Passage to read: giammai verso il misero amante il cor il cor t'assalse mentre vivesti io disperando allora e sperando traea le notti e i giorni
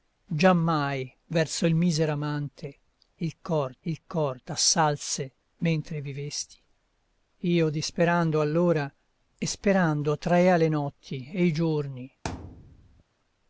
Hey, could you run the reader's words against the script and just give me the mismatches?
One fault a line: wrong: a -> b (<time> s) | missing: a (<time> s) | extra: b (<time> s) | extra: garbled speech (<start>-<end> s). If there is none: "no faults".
no faults